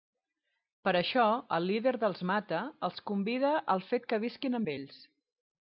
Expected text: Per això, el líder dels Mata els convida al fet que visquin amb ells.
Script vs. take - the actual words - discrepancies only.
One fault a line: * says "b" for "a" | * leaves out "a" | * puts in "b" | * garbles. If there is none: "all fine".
all fine